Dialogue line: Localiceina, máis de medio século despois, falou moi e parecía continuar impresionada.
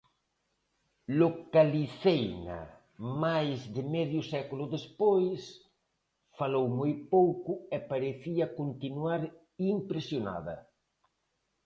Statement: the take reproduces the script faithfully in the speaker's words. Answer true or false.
false